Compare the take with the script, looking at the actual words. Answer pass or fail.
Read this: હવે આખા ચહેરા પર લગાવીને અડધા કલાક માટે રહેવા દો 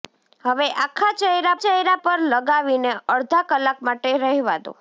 fail